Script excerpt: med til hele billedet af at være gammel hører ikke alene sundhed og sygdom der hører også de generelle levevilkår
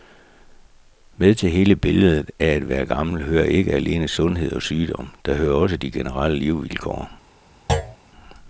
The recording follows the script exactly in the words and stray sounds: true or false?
false